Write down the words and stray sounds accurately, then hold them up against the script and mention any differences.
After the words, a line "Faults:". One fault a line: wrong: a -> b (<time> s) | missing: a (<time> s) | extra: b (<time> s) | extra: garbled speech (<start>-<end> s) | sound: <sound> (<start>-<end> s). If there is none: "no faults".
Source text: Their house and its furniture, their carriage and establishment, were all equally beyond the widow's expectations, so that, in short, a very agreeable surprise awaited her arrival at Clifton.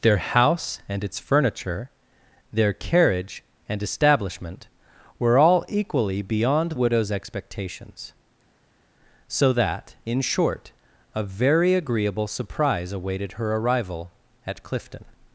Their house and its furniture, their carriage and establishment, were all equally beyond widow's expectations, so that, in short, a very agreeable surprise awaited her arrival at Clifton.
Faults:
missing: the (6.7 s)